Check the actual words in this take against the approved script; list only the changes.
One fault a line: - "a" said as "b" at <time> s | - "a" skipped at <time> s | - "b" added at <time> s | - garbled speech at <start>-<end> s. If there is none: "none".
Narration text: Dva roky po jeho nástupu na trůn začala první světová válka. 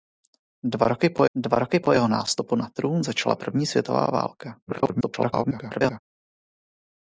- "dva roky po" added at 1.3 s
- garbled speech at 4.7-6.0 s